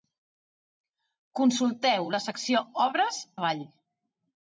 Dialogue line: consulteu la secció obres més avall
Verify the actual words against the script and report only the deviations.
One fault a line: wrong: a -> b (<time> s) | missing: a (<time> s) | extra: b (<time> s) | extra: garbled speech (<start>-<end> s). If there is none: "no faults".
missing: més (3.2 s)